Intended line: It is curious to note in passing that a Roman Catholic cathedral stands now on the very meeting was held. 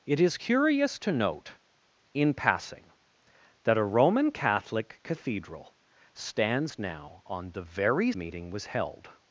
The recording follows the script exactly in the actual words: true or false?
true